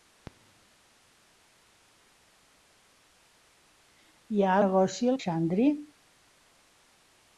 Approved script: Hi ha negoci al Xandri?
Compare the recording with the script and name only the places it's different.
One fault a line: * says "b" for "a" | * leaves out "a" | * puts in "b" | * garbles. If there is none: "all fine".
all fine